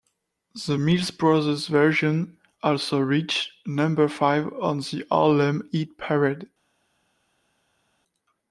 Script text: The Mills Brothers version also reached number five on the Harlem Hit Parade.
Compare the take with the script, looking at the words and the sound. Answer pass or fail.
pass